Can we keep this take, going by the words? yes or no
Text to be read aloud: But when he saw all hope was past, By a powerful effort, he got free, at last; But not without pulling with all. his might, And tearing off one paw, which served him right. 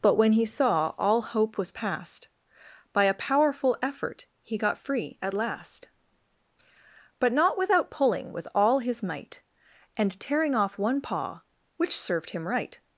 yes